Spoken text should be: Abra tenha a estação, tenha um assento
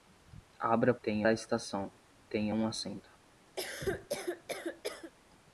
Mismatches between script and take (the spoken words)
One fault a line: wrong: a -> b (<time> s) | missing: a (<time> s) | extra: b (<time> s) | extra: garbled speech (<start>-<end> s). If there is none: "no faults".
no faults